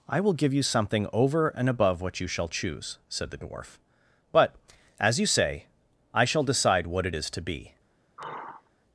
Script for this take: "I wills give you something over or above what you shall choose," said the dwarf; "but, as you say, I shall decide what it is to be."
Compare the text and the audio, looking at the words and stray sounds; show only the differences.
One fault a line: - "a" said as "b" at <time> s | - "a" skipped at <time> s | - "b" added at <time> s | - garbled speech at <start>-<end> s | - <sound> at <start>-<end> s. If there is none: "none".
- "wills" said as "will" at 0.2 s
- "or" said as "and" at 1.5 s
- sigh at 8.2-8.7 s